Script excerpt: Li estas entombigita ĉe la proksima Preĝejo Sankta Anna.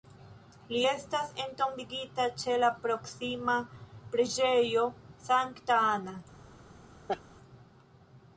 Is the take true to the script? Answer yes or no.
yes